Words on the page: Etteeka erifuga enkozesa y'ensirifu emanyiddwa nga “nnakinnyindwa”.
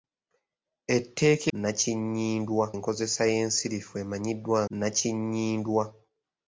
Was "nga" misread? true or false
true